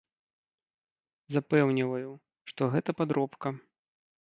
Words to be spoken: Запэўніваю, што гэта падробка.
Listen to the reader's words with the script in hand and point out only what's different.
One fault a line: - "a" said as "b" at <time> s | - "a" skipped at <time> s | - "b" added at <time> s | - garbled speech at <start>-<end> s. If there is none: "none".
none